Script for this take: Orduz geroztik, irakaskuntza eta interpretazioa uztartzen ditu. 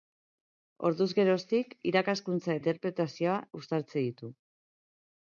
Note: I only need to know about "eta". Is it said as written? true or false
false